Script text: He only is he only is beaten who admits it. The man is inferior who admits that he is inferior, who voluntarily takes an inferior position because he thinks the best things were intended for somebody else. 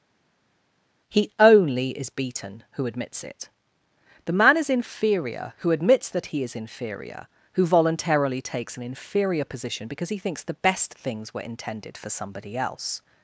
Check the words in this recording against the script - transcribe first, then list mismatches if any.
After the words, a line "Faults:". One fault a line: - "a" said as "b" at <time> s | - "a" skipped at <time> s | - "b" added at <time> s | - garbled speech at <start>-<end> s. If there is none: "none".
He only is beaten who admits it. The man is inferior who admits that he is inferior, who voluntarily takes an inferior position because he thinks the best things were intended for somebody else.
Faults:
- "he only is" skipped at 2.1 s